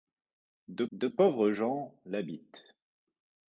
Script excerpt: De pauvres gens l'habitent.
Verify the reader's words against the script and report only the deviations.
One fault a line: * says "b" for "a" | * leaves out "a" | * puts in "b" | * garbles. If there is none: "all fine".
* puts in "de"